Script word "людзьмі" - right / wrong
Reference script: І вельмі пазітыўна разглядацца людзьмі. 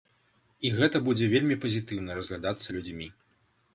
right